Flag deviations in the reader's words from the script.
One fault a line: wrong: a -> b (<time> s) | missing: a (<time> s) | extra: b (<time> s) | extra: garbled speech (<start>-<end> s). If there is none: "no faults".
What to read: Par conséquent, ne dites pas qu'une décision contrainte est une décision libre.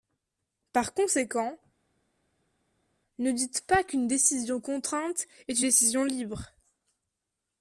missing: une (5.6 s)